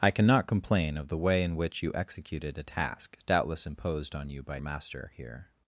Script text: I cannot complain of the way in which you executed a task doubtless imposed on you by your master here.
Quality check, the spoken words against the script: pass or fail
fail